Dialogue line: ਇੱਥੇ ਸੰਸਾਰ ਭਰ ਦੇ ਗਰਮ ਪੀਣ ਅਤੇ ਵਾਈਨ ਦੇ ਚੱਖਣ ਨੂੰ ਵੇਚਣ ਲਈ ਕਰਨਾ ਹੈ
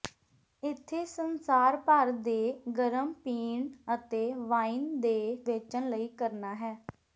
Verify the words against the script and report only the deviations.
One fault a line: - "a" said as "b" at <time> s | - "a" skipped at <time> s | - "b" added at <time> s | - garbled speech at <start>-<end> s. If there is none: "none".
- "ਚੱਖਣ ਨੂੰ" skipped at 5.5 s